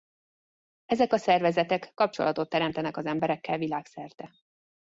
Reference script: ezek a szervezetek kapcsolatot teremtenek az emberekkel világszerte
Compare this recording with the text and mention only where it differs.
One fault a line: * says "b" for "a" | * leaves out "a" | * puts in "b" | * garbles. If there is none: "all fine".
all fine